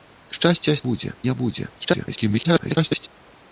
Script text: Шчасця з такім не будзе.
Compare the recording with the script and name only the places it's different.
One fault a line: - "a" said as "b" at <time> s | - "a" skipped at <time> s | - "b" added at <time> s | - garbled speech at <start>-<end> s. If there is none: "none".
- "такім" said as "будзе" at 0.9 s
- garbled speech at 1.8-3.1 s